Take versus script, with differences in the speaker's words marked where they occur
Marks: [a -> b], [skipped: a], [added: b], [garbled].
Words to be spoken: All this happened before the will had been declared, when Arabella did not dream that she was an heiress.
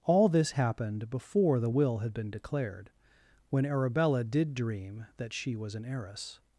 All this happened before the will had been declared, when Arabella did [skipped: not] dream that she was an heiress.